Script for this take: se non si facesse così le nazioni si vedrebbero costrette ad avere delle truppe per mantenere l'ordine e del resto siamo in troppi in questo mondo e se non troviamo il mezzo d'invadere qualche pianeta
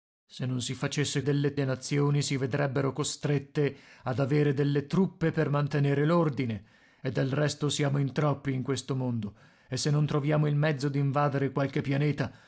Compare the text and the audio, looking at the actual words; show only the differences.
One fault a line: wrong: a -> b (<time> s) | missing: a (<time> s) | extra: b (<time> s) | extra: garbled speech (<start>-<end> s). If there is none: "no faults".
wrong: così -> delle (1.2 s)